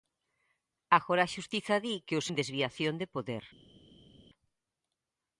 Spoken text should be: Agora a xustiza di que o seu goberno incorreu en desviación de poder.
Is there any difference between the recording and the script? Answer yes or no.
yes